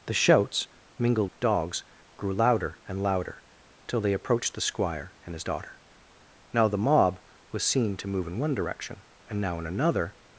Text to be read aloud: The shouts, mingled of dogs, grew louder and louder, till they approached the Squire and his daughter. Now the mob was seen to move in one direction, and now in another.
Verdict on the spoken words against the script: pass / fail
pass